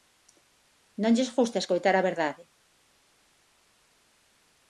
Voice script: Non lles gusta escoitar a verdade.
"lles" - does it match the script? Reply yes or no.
yes